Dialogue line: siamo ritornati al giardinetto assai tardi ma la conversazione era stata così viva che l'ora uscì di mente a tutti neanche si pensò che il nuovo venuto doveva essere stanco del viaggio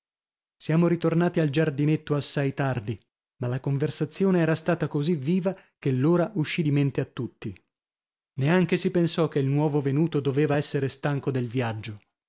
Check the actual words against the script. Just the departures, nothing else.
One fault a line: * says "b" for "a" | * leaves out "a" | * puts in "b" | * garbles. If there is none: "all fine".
all fine